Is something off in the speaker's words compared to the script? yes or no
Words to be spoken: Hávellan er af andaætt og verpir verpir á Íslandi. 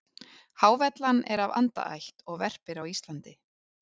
yes